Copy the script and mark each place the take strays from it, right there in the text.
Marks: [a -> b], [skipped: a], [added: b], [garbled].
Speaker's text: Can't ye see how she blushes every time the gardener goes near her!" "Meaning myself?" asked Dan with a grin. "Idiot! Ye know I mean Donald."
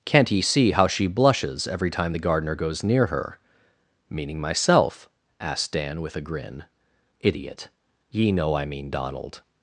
Can't ye see how she blushes every time the gardener goes near her!" "Meaning myself?" asked Dan with a grin. "Idiot! Ye know I mean Donald."